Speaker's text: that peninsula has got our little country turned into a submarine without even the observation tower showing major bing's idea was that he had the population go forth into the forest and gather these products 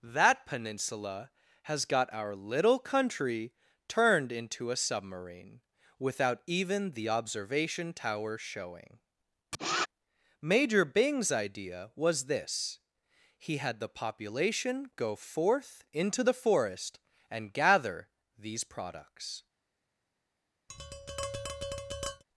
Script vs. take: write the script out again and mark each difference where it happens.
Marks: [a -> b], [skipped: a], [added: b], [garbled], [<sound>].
that peninsula has got our little country turned into a submarine without even the observation tower showing [sniff] major bing's idea was [that -> this] he had the population go forth into the forest and gather these products [tap]